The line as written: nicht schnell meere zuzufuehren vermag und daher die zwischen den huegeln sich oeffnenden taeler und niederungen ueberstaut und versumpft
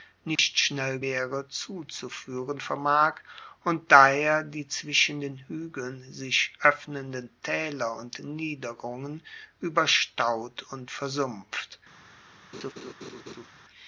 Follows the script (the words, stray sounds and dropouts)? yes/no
no